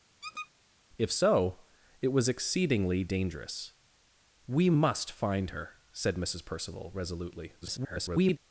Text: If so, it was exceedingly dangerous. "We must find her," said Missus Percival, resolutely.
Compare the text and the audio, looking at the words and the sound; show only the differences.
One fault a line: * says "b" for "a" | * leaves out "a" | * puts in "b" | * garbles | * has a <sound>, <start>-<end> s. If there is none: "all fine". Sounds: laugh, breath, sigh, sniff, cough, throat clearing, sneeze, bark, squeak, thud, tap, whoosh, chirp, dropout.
* has a squeak, 0.2-0.5 s
* garbles